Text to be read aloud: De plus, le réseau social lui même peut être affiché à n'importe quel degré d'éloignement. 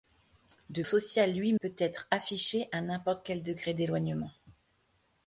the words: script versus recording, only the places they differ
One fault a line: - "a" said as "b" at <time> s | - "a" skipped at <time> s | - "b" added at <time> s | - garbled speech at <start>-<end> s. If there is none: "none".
- "plus le réseau" skipped at 0.8 s
- "même" skipped at 1.5 s